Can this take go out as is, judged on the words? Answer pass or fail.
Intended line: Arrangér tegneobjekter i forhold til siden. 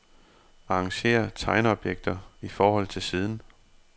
pass